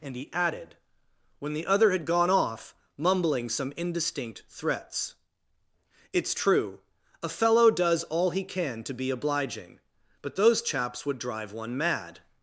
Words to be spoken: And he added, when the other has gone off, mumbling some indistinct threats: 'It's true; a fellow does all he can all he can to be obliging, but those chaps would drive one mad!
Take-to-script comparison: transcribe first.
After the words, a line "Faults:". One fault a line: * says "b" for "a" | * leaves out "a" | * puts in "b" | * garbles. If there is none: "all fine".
And he added, when the other had gone off, mumbling some indistinct threats: 'It's true; a fellow does all he can to be obliging, but those chaps would drive one mad!
Faults:
* says "had" for "has"
* leaves out "all he can"